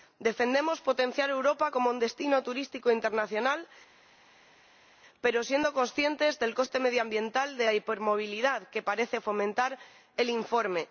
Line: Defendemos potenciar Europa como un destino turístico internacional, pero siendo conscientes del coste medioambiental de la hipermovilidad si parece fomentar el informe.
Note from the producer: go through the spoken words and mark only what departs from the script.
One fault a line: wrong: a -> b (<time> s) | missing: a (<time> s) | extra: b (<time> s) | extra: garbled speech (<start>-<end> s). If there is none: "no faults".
wrong: si -> que (8.7 s)